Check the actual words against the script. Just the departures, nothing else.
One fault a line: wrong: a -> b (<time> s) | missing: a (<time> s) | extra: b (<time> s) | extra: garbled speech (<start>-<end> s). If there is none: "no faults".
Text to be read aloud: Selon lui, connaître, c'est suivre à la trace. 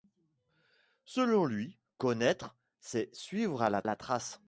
extra: la (3.8 s)